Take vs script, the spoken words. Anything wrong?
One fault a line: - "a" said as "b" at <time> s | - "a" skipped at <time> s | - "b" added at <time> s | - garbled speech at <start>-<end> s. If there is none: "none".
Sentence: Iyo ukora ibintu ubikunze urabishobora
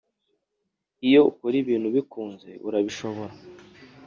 none